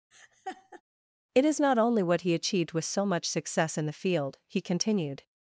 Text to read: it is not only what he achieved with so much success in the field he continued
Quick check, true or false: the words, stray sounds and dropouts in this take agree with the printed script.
false